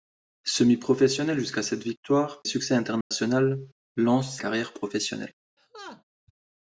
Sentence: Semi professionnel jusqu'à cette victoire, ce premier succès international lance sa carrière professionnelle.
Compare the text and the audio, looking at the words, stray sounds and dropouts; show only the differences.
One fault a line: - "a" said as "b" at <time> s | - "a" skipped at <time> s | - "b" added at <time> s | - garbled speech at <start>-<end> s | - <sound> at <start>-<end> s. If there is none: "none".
- "ce premier" skipped at 2.4 s
- dropout at 3.0-3.1 s
- "sa" skipped at 4.4 s
- laugh at 5.6-6.0 s